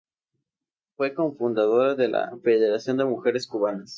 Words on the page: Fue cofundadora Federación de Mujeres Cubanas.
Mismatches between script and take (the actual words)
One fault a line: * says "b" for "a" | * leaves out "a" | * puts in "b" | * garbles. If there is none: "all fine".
* puts in "de la"